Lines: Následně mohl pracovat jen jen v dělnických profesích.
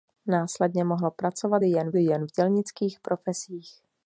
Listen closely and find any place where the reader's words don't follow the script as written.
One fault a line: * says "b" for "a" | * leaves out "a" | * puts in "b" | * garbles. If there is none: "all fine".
all fine